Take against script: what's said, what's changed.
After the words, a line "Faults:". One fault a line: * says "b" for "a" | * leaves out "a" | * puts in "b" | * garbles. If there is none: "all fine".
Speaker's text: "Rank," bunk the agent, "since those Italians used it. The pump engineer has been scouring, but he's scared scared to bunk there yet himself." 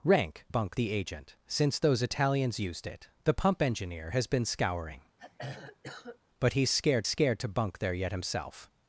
"Rank," bunk the agent, "since those Italians used it. The pump engineer has been scouring, but he's scared scared to bunk there yet himself."
Faults:
all fine